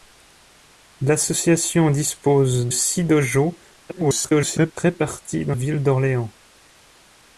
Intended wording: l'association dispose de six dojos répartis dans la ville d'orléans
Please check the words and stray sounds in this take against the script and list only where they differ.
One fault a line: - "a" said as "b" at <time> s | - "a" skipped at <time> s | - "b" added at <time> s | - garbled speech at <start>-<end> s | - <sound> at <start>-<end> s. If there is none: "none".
- "de" skipped at 2.7 s
- garbled speech at 3.9-4.7 s
- "la" skipped at 5.5 s